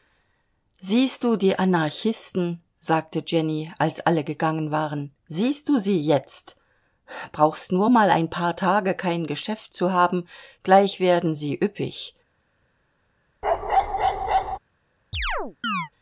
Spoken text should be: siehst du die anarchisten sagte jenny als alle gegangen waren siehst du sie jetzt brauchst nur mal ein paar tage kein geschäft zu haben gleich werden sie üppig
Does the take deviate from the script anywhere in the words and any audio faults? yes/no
yes